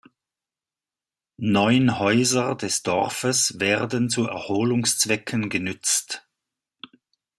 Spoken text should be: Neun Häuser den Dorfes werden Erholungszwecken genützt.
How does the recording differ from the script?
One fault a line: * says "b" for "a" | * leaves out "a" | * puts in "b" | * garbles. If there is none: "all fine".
* says "des" for "den"
* puts in "zu"